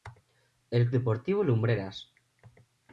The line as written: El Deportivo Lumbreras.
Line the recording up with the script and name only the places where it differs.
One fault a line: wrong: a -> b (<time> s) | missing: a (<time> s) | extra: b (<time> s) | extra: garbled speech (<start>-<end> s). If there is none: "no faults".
no faults